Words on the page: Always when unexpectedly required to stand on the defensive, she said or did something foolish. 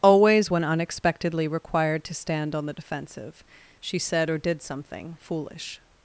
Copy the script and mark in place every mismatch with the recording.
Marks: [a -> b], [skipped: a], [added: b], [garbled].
Always when unexpectedly required to stand on the defensive, she said or did something foolish.